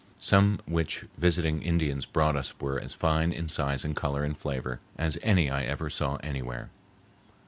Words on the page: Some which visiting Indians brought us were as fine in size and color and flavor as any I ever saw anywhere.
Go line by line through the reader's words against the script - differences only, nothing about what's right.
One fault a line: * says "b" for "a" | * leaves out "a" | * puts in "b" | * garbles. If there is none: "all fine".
all fine